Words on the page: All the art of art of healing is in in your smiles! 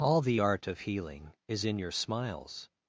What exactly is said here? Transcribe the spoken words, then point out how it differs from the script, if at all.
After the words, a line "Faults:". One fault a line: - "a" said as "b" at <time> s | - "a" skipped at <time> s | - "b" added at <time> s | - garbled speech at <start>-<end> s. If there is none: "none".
All the art of healing is in your smiles!
Faults:
- "art of" skipped at 0.8 s
- "in" skipped at 1.8 s